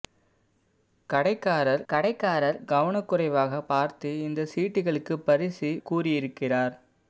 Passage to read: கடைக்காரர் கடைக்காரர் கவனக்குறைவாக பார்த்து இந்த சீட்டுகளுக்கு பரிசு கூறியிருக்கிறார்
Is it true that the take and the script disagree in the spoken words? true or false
false